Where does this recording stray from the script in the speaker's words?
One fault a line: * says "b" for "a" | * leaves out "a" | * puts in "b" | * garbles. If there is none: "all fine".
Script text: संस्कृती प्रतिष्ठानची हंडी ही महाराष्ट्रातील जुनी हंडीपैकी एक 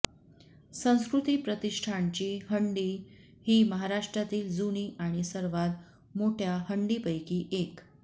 * puts in "आणि सर्वात मोठ्या"